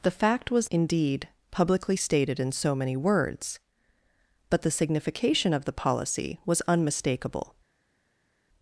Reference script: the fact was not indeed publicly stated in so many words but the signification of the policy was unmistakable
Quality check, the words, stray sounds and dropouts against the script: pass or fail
fail